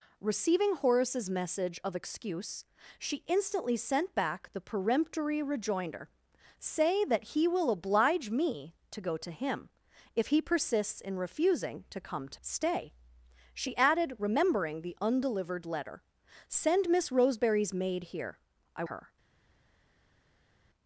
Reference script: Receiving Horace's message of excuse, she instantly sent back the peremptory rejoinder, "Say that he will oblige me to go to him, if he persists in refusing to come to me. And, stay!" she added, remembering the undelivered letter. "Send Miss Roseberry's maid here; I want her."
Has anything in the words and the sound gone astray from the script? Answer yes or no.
yes